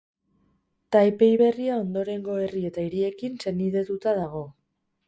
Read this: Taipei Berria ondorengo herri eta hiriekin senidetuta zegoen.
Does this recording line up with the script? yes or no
no